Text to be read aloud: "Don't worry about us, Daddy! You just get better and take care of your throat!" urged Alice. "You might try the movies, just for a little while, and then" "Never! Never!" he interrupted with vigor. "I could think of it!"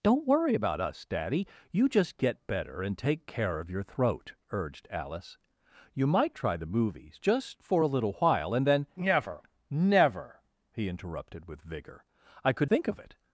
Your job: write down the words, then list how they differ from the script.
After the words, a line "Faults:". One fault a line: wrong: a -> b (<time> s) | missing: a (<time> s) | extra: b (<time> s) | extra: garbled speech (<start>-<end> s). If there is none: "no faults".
"Don't worry about us, Daddy! You just get better and take care of your throat!" urged Alice. "You might try the movies, just for a little while, and then" "Never! Never!" he interrupted with vigor. "I could think of it!"
Faults:
no faults